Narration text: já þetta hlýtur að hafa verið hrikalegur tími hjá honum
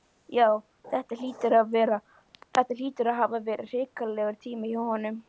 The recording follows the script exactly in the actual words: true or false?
true